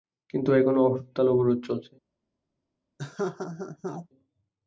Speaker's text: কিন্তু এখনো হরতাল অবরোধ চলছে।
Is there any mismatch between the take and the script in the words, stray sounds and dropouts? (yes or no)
yes